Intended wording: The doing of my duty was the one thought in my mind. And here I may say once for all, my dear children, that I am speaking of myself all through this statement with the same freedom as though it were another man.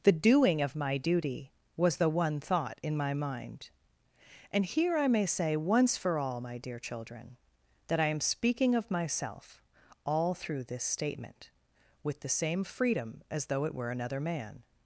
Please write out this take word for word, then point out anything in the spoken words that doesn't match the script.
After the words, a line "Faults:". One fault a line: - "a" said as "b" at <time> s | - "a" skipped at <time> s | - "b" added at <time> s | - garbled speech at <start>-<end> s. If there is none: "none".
The doing of my duty was the one thought in my mind. And here I may say once for all, my dear children, that I am speaking of myself all through this statement with the same freedom as though it were another man.
Faults:
none